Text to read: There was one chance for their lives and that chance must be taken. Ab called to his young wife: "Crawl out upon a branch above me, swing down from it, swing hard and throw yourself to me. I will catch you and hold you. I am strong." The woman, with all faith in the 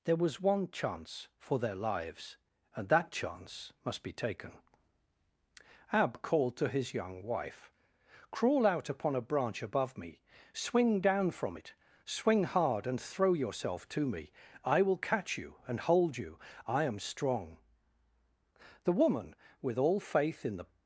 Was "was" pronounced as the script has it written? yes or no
yes